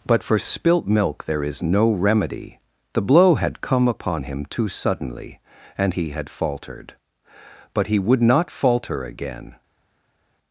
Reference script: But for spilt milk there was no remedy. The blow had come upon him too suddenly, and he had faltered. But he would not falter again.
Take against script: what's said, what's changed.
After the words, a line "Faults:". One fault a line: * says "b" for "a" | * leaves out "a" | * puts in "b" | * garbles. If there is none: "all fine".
But for spilt milk there is no remedy. The blow had come upon him too suddenly, and he had faltered. But he would not falter again.
Faults:
* says "is" for "was"